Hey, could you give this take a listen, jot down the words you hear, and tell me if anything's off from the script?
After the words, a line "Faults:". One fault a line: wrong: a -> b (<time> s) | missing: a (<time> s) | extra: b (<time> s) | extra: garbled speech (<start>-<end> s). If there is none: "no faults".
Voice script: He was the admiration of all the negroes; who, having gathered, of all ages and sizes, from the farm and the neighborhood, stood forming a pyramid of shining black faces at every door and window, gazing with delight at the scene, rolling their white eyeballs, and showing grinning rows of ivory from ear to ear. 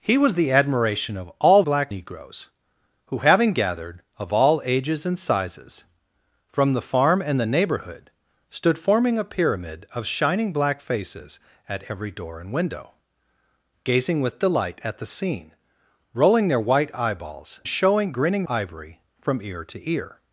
He was the admiration of all black negroes; who, having gathered, of all ages and sizes, from the farm and the neighborhood, stood forming a pyramid of shining black faces at every door and window, gazing with delight at the scene, rolling their white eyeballs, showing grinning ivory from ear to ear.
Faults:
wrong: the -> black (1.6 s)
missing: and (17.6 s)
missing: rows of (18.5 s)